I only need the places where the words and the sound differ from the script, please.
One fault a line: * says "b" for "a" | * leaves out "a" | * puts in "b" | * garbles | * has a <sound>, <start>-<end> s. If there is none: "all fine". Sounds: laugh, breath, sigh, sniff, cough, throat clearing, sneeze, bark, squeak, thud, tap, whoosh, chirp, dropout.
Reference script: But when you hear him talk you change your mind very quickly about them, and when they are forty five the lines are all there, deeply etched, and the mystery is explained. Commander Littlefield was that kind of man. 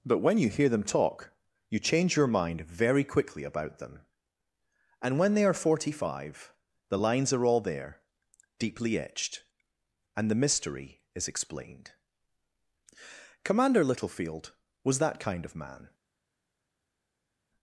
* says "them" for "him"